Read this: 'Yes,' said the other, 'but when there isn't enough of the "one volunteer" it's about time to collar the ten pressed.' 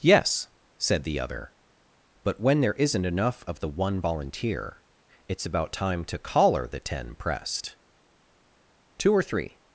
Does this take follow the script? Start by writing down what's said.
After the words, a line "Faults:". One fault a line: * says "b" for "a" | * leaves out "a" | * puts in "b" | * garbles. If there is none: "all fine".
'Yes,' said the other, 'but when there isn't enough of the "one volunteer" it's about time to collar the ten pressed.' Two or three
Faults:
* puts in "Two or three"